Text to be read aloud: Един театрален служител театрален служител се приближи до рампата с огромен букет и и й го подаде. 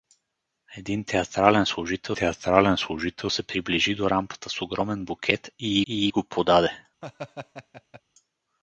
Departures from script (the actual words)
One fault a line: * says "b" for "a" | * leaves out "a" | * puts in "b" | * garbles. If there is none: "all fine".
all fine